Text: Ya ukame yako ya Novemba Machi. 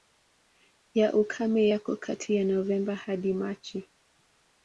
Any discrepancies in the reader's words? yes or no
yes